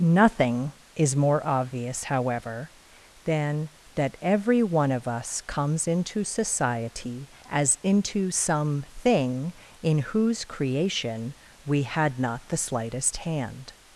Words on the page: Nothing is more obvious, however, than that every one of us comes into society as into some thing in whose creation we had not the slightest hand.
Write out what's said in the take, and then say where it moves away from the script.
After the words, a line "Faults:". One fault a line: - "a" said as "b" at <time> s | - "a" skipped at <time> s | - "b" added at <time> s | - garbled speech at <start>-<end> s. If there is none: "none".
Nothing is more obvious, however, than that every one of us comes into society as into some thing in whose creation we had not the slightest hand.
Faults:
none